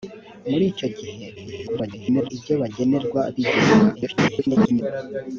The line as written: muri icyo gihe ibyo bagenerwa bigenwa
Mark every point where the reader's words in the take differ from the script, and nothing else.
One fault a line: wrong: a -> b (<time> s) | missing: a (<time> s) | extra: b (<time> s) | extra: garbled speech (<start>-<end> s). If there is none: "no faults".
extra: garbled speech (1.4-2.3 s)
extra: garbled speech (3.9-4.8 s)